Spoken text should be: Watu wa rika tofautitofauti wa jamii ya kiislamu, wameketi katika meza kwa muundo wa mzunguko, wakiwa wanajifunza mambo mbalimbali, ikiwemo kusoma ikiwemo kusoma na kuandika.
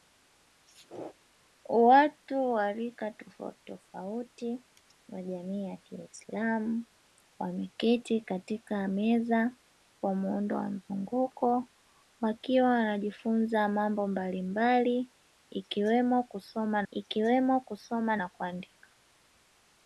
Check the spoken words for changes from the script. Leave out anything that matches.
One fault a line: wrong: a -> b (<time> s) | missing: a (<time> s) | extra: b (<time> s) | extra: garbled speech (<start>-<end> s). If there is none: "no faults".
no faults